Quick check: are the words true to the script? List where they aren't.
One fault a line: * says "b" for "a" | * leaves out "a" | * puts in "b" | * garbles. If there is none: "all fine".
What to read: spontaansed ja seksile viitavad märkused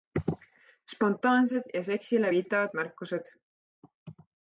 all fine